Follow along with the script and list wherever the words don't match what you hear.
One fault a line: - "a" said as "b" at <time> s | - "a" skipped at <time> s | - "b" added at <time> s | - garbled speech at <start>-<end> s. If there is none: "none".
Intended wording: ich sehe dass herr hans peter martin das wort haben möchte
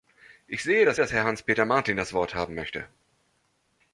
- "dass" added at 1.0 s